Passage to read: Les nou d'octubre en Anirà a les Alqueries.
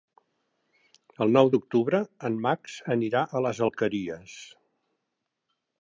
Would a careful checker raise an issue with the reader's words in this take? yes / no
yes